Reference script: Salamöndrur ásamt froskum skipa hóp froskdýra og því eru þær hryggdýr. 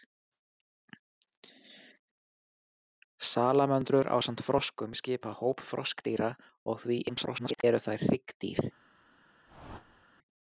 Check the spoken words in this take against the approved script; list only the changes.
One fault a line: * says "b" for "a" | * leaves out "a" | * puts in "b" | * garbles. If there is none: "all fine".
* garbles